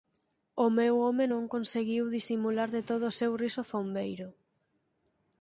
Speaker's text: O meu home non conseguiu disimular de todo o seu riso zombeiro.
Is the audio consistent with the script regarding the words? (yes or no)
yes